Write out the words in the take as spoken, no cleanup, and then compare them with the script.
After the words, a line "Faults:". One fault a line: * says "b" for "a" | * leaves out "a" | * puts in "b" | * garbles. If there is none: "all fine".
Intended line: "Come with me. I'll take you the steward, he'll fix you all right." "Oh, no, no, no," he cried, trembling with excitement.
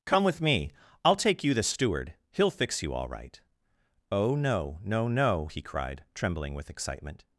"Come with me. I'll take you the steward, he'll fix you all right." "Oh, no, no, no," he cried, trembling with excitement.
Faults:
all fine